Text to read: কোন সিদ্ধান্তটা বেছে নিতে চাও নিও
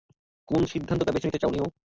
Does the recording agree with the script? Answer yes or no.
yes